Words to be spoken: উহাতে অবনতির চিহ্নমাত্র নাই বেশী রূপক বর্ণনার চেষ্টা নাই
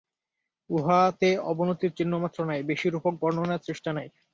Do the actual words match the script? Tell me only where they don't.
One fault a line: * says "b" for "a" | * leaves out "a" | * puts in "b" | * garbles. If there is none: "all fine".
all fine